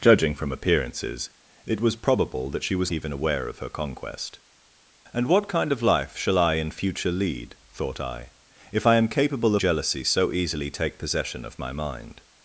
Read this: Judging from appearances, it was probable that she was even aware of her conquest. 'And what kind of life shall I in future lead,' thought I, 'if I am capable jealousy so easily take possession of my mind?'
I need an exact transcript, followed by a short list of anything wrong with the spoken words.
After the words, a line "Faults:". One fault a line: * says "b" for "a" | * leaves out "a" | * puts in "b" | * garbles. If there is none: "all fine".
Judging from appearances, it was probable that she was even aware of her conquest. 'And what kind of life shall I in future lead,' thought I, 'if I am capable jealousy so easily take possession of my mind?'
Faults:
all fine